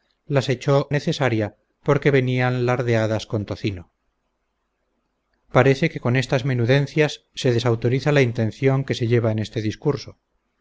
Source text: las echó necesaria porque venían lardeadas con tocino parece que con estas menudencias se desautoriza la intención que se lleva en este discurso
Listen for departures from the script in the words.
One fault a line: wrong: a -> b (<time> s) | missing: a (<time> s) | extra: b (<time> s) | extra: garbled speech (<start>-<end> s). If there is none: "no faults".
no faults